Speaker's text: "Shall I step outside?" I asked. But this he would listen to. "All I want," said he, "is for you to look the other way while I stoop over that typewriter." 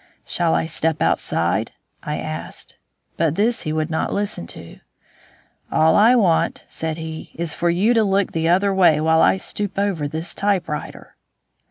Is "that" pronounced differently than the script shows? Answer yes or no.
yes